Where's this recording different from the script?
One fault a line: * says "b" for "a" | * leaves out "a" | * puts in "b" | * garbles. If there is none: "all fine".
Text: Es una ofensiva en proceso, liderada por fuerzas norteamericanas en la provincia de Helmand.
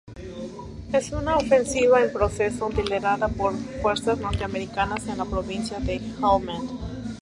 all fine